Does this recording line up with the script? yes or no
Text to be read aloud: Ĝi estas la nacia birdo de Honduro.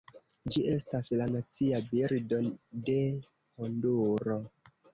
yes